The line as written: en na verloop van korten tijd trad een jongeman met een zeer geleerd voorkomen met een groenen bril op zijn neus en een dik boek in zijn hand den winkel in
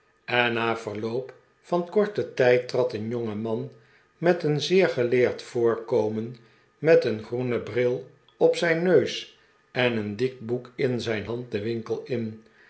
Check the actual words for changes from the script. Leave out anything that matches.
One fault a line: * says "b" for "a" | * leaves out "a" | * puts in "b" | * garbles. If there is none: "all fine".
all fine